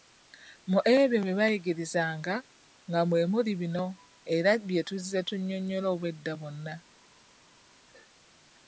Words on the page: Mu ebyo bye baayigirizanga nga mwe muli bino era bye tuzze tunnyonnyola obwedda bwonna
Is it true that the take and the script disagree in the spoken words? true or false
false